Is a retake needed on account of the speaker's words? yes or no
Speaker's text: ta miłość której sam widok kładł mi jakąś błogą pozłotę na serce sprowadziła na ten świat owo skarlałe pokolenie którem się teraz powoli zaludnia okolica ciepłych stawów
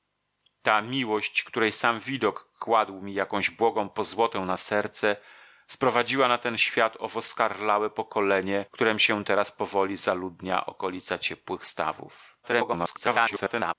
yes